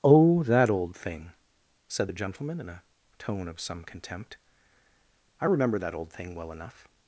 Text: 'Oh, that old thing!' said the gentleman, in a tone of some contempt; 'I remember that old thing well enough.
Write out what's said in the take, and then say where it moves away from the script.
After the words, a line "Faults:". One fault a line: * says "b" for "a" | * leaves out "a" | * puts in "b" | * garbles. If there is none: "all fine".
'Oh, that old thing!' said the gentleman, in a tone of some contempt; 'I remember that old thing well enough.
Faults:
all fine